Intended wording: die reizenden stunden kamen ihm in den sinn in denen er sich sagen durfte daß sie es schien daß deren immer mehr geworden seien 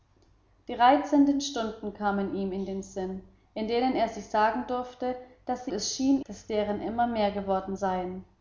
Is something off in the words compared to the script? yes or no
no